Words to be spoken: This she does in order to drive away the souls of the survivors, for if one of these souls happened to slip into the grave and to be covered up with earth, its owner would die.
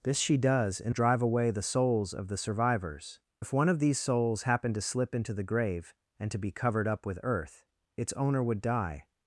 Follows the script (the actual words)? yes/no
no